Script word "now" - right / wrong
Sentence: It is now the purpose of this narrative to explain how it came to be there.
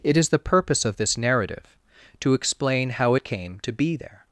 wrong